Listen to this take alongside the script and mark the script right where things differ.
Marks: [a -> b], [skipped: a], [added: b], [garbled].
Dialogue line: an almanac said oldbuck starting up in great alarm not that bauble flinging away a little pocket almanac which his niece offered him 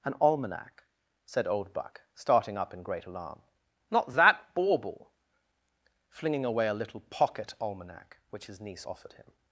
an almanac said oldbuck starting up in great alarm not that bauble flinging away a little pocket almanac which his niece offered him